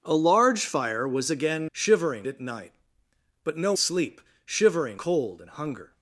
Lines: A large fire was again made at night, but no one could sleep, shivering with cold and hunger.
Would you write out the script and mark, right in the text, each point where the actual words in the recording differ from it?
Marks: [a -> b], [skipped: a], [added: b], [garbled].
A large fire was again [made -> shivering] at night, but no [skipped: one could] sleep, shivering [skipped: with] cold and hunger.